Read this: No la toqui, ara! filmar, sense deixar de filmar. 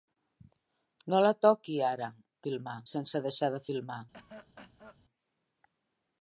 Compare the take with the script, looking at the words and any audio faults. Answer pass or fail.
fail